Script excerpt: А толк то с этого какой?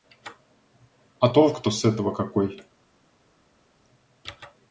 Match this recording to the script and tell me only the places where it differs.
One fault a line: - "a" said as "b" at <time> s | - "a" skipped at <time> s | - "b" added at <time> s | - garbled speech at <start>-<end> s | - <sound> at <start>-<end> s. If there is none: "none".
none